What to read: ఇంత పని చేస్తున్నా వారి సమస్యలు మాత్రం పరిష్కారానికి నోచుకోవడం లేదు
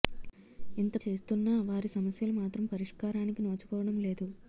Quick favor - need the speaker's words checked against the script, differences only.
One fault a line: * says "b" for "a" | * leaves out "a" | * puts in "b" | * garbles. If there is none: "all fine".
* leaves out "పని"